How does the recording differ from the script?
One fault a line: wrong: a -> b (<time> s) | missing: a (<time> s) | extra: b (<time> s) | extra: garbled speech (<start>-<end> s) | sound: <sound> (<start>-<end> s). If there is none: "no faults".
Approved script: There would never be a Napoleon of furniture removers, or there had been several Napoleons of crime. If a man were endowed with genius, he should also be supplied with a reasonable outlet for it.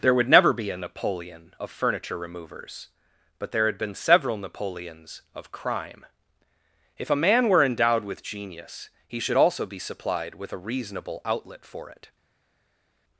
wrong: or -> but (3.4 s)